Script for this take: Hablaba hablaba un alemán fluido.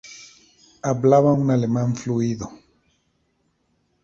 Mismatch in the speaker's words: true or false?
true